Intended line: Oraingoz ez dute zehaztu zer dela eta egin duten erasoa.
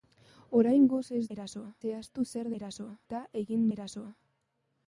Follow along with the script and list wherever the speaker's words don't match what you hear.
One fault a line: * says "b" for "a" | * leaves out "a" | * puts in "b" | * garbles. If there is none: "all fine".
* says "erasoa" for "dute"
* says "erasoa" for "dela"
* leaves out "duten"